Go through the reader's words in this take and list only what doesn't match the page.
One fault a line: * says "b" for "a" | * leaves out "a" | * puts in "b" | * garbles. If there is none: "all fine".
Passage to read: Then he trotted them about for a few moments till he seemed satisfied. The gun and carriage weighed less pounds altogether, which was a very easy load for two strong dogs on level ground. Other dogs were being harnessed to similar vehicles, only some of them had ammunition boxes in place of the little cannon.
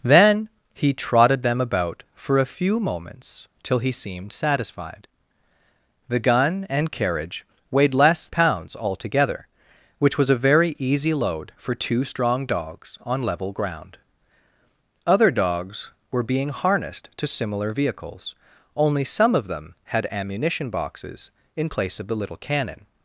all fine